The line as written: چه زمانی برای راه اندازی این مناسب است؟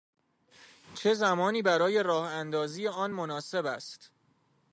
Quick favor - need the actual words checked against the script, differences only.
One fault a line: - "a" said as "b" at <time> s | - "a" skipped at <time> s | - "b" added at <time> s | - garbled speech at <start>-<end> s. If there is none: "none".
- "این" said as "آن" at 2.9 s